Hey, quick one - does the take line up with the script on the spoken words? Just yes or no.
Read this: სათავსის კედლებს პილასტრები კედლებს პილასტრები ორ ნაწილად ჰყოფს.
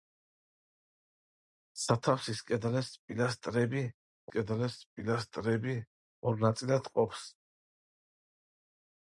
yes